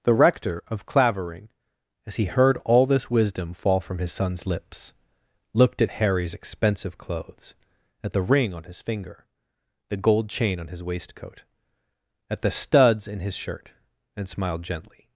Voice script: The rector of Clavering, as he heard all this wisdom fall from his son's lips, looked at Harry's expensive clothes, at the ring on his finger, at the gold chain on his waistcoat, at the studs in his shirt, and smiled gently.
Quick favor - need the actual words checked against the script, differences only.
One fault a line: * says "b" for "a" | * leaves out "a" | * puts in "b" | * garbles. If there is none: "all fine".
* leaves out "at"